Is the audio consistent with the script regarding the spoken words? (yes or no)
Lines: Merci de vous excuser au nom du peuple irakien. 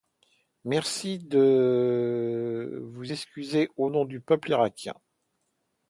yes